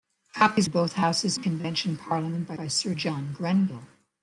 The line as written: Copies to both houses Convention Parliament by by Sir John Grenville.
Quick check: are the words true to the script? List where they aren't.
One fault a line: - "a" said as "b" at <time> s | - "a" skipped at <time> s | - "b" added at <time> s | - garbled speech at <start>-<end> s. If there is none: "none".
none